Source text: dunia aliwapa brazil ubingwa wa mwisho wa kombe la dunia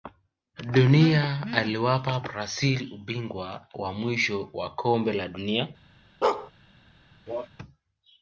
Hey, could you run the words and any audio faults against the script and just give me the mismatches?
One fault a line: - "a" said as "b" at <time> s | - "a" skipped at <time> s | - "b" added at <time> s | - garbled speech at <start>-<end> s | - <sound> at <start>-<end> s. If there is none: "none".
- bark at 6.2-6.5 s
- cough at 7.3-7.5 s